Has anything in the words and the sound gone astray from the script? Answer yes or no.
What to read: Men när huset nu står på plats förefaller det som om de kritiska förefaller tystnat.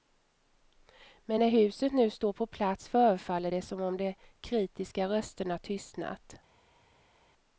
yes